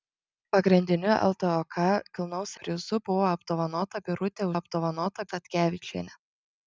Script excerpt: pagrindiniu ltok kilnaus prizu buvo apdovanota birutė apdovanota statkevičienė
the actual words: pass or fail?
pass